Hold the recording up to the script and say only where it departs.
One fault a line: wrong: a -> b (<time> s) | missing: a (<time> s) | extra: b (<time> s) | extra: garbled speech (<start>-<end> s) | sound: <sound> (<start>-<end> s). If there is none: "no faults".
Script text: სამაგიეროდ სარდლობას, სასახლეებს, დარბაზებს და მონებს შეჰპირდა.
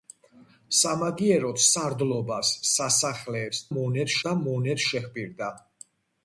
wrong: დარბაზებს -> მონებს (3.8 s)